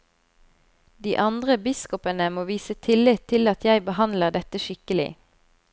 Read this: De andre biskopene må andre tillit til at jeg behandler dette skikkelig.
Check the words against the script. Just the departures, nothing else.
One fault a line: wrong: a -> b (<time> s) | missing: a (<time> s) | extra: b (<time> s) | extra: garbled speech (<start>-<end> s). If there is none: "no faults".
wrong: andre -> vise (2.5 s)